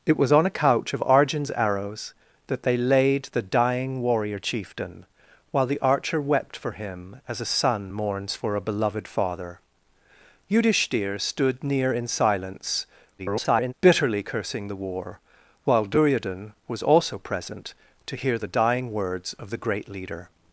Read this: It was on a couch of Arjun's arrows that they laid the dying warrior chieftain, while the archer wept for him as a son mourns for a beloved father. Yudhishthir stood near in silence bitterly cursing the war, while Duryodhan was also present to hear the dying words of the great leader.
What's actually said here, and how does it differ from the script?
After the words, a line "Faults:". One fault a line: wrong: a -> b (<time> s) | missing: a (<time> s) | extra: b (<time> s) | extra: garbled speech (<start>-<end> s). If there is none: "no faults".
It was on a couch of Arjun's arrows that they laid the dying warrior chieftain, while the archer wept for him as a son mourns for a beloved father. Yudhishthir stood near in silence [garbled] bitterly cursing the war, while Duryodhan was also present to hear the dying words of the great leader.
Faults:
extra: garbled speech (13.2-13.7 s)